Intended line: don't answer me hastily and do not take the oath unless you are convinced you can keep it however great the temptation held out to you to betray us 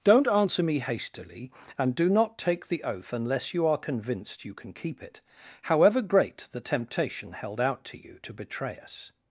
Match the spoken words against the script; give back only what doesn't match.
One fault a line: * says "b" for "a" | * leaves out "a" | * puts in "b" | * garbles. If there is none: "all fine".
all fine